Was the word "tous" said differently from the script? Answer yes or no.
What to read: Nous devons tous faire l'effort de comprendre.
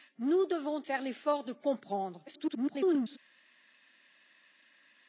yes